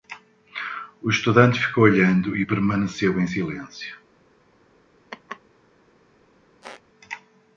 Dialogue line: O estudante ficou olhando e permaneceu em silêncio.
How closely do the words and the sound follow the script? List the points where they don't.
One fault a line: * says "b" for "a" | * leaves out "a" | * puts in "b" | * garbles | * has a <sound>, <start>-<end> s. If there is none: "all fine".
* has a laugh, 5.1-5.4 s
* has a squeak, 6.6-6.8 s